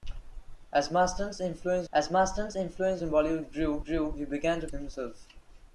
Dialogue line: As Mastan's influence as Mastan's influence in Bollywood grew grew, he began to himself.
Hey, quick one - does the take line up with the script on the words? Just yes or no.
yes